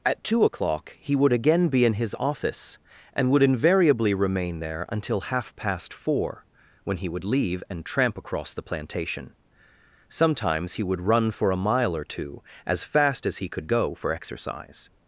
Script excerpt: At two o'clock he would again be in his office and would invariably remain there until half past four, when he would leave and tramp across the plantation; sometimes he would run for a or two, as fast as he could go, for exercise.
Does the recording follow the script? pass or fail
fail